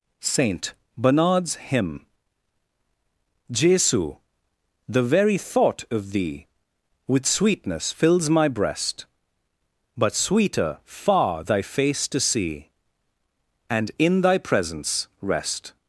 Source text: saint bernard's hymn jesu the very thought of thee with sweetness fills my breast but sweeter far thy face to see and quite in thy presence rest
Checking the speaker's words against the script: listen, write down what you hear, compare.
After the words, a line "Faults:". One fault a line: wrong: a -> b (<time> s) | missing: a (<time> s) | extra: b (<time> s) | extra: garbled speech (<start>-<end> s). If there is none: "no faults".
saint bernard's hymn jesu the very thought of thee with sweetness fills my breast but sweeter far thy face to see and in thy presence rest
Faults:
missing: quite (13.9 s)